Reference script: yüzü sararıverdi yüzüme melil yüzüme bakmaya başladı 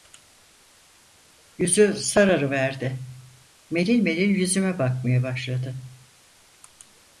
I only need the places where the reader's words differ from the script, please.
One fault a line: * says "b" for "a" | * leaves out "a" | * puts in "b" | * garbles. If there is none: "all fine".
* says "melil" for "yüzüme"